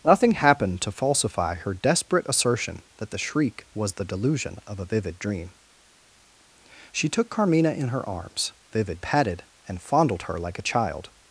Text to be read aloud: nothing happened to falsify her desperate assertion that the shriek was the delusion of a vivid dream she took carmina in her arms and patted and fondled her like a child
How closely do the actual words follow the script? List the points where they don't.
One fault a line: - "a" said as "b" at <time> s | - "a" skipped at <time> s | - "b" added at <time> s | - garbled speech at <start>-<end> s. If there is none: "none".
- "and" said as "vivid" at 8.7 s